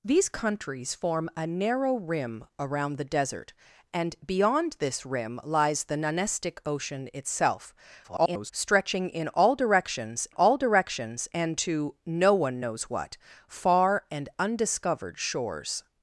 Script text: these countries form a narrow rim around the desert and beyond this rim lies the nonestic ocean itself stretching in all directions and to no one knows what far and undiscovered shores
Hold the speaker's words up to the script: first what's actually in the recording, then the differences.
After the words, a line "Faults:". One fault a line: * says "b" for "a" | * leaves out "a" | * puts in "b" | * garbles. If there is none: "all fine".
these countries form a narrow rim around the desert and beyond this rim lies the nonestic ocean itself [garbled] stretching in all directions all directions and to no one knows what far and undiscovered shores
Faults:
* garbles
* puts in "all directions"